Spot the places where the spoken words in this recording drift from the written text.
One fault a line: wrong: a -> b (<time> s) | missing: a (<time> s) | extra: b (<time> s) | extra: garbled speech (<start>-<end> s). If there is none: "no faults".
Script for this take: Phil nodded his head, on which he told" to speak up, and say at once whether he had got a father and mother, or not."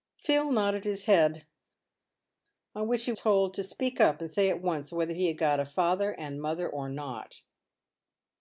no faults